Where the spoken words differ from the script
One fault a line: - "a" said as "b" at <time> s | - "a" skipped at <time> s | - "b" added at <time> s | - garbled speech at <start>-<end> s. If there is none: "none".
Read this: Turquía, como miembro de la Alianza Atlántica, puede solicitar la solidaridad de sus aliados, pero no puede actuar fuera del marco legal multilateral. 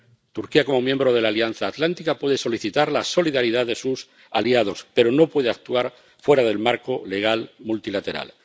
none